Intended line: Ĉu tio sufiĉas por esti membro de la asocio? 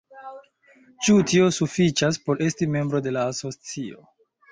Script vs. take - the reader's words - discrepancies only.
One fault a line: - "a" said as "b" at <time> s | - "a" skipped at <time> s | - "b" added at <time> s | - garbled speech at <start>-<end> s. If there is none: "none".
none